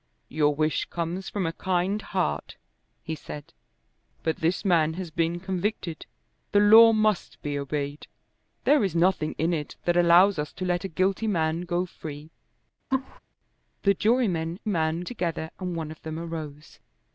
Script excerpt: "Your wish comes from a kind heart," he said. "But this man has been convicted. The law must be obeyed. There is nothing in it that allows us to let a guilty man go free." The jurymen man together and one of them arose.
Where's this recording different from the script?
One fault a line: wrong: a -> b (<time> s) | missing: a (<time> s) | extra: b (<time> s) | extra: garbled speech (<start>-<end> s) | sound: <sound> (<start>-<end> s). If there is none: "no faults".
sound: laugh (12.9-13.2 s)